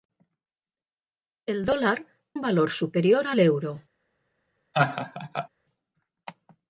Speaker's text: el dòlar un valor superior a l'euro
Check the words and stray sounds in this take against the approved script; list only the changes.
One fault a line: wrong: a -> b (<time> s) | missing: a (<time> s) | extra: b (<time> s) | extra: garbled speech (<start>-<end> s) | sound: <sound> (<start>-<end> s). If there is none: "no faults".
sound: laugh (4.7-5.5 s)